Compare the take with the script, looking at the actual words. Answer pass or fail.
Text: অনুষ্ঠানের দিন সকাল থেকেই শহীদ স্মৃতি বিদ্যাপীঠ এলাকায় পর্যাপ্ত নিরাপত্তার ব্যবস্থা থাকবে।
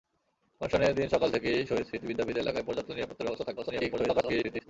fail